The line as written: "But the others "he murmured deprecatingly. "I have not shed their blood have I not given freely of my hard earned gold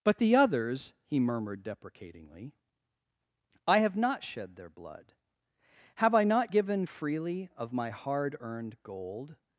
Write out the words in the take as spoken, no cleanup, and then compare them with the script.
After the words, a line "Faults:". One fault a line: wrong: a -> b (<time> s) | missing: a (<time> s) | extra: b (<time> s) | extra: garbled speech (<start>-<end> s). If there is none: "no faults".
"But the others "he murmured deprecatingly. "I have not shed their blood have I not given freely of my hard earned gold
Faults:
no faults